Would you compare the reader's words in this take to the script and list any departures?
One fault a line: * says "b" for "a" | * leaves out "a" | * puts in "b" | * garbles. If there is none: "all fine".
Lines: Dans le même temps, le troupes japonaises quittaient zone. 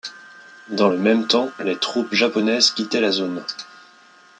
* says "les" for "le"
* puts in "la"